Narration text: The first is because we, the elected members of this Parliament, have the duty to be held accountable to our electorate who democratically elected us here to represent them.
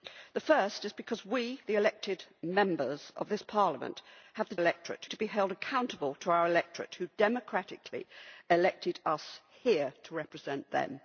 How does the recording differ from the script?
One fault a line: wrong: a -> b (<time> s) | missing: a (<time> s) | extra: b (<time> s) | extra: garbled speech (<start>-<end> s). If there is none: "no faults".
wrong: duty -> electorate (4.6 s)